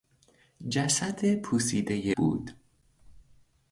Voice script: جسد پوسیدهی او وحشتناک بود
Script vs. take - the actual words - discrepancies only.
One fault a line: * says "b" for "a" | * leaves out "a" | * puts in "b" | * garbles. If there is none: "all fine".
* leaves out "او وحشتناک"